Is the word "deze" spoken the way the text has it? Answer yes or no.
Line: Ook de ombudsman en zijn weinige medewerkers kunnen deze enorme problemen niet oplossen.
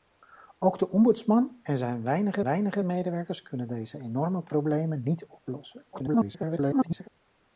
yes